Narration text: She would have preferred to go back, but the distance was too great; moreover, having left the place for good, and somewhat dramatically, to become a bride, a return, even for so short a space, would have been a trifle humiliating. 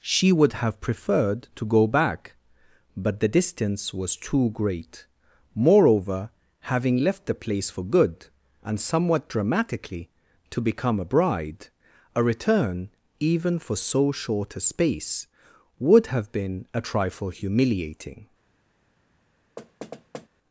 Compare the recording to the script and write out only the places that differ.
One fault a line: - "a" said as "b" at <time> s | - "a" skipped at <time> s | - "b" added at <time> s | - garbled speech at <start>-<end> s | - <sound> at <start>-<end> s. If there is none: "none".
- thud at 19.6-20.3 s